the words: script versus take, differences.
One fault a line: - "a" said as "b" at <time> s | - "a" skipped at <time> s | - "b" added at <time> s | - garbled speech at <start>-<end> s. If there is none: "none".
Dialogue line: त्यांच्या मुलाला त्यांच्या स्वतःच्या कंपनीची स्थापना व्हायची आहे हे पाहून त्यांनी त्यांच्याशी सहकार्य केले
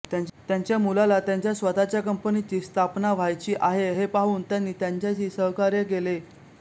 none